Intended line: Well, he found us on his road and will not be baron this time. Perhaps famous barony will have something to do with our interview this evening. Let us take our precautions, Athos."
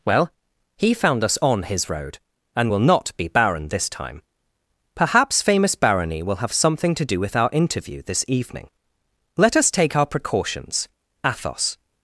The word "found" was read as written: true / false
true